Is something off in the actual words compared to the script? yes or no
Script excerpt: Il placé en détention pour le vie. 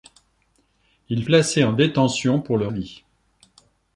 no